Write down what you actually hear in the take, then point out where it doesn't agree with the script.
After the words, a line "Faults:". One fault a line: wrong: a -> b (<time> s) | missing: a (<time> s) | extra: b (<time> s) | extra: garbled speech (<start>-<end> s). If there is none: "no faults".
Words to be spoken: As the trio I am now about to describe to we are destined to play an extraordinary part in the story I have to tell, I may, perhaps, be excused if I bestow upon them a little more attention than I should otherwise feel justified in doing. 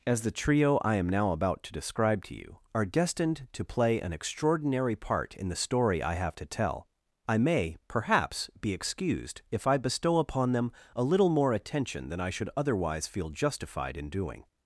As the trio I am now about to describe to you are destined to play an extraordinary part in the story I have to tell, I may, perhaps, be excused if I bestow upon them a little more attention than I should otherwise feel justified in doing.
Faults:
wrong: we -> you (2.3 s)